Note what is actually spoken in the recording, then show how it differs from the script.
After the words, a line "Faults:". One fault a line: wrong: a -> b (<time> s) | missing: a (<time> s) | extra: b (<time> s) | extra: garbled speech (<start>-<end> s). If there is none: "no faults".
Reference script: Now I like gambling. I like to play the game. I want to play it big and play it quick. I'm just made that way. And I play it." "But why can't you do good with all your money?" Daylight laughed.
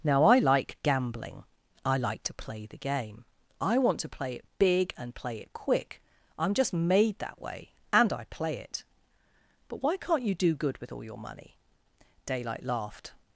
Now I like gambling. I like to play the game. I want to play it big and play it quick. I'm just made that way. And I play it." "But why can't you do good with all your money?" Daylight laughed.
Faults:
no faults